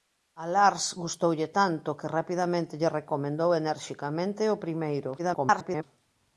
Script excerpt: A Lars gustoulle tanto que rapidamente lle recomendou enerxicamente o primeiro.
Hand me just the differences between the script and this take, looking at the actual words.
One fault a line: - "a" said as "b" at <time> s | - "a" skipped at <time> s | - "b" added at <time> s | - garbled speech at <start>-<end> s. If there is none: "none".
- garbled speech at 5.2-5.8 s